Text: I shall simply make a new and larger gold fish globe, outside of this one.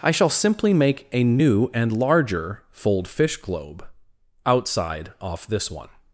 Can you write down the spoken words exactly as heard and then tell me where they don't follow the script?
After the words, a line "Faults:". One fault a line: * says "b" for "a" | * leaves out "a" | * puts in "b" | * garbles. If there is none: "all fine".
I shall simply make a new and larger fold fish globe, outside off this one.
Faults:
* says "fold" for "gold"
* says "off" for "of"